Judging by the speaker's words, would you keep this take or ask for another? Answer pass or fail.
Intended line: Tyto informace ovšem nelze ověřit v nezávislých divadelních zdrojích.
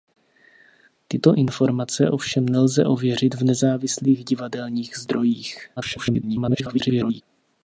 fail